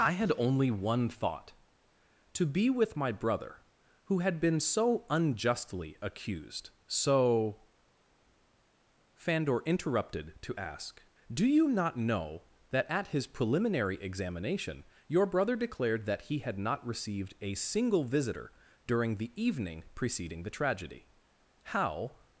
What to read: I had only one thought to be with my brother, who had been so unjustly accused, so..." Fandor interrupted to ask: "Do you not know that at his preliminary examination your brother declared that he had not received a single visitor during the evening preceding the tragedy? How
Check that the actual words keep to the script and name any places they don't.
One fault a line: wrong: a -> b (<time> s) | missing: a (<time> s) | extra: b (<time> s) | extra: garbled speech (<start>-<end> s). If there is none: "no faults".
no faults